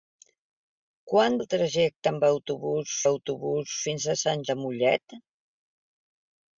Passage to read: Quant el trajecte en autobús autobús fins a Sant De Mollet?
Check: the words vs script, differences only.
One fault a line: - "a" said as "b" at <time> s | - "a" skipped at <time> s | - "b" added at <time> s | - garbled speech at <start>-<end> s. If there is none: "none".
none